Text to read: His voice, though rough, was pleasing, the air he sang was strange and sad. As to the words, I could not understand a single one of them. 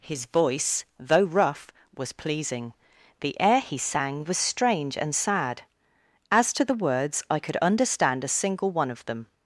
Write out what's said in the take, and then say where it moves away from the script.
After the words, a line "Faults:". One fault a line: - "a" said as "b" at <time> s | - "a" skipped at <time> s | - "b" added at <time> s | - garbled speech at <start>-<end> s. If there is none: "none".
His voice, though rough, was pleasing, the air he sang was strange and sad. As to the words, I could understand a single one of them.
Faults:
- "not" skipped at 7.6 s